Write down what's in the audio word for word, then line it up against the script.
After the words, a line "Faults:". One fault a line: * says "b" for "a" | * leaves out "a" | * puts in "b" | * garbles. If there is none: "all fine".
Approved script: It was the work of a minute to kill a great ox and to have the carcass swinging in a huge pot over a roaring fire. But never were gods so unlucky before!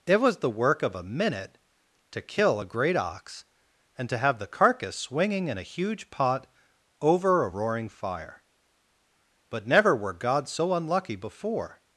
It was the work of a minute to kill a great ox and to have the carcass swinging in a huge pot over a roaring fire. But never were gods so unlucky before!
Faults:
all fine